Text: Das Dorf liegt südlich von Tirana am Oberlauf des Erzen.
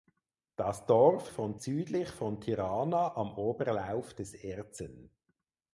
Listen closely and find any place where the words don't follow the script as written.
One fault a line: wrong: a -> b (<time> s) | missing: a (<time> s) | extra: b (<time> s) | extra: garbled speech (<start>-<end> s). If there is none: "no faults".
wrong: liegt -> von (1.3 s)